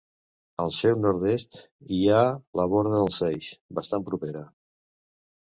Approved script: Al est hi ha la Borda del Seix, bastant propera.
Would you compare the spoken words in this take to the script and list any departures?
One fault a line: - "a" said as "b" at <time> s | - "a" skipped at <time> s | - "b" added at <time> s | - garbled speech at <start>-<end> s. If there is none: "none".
- "seu nord" added at 0.8 s